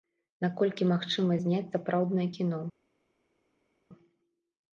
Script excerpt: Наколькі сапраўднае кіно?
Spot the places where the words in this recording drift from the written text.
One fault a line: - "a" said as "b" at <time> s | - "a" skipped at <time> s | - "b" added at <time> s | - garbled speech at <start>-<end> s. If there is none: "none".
- "магчыма зняць" added at 0.9 s